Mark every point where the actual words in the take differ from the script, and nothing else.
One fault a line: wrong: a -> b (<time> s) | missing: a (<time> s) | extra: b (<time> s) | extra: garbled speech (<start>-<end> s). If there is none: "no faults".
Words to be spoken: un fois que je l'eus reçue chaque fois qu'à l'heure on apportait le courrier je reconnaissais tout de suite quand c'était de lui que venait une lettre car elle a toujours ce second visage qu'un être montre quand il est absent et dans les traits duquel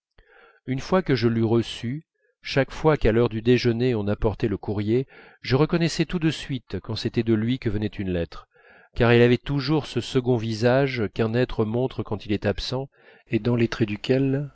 wrong: un -> une (0.7 s)
extra: du déjeuner (3.3 s)
wrong: a -> avait (9.2 s)